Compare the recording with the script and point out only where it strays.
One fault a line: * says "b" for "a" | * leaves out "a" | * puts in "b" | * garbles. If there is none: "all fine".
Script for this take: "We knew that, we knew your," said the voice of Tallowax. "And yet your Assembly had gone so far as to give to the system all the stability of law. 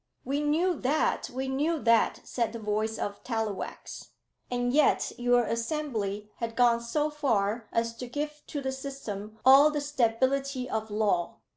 * says "that" for "your"